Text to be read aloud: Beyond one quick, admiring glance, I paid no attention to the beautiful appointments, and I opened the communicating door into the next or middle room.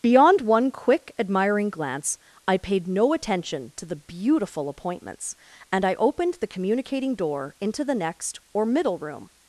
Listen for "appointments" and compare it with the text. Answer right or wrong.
right